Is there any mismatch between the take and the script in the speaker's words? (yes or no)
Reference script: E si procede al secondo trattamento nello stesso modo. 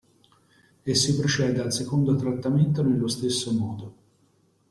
no